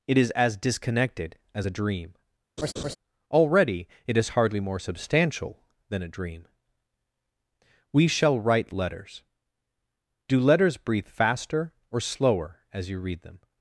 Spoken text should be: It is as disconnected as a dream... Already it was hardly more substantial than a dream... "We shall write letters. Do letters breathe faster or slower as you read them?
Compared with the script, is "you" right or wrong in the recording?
right